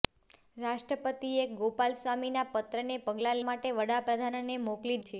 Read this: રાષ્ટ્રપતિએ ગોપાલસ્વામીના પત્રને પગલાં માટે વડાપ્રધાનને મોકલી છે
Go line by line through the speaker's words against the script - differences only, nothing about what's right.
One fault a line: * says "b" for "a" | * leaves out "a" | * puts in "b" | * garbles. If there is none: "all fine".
all fine